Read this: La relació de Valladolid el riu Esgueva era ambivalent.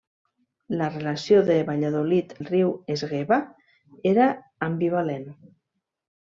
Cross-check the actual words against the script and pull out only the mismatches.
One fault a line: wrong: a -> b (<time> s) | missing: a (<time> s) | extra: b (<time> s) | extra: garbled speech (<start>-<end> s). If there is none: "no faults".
no faults